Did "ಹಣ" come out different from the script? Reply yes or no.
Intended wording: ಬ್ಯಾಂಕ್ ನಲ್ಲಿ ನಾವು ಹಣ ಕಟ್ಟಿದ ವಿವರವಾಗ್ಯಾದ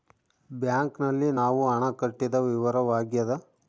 no